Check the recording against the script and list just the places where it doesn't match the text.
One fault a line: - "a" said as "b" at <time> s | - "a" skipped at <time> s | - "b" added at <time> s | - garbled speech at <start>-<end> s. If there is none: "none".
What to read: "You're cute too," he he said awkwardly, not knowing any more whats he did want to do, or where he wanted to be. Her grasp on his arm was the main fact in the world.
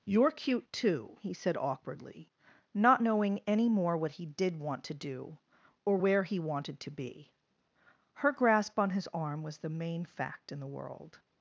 - "he" skipped at 1.3 s
- "whats" said as "what" at 4.0 s